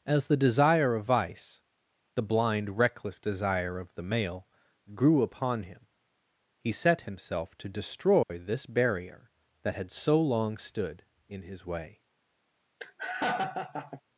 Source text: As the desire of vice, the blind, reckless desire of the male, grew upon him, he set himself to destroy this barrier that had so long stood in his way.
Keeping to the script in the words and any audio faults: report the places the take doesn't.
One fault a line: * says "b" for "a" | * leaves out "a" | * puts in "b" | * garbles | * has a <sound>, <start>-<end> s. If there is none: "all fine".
* has a dropout, 8.2-8.3 s
* has a laugh, 12.8-14.0 s